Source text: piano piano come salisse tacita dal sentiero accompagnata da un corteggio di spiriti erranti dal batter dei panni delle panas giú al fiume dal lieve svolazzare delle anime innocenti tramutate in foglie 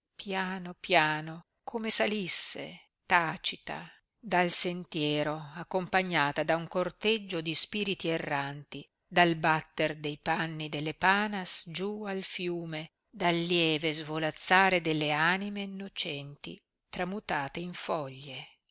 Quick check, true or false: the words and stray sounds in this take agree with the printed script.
true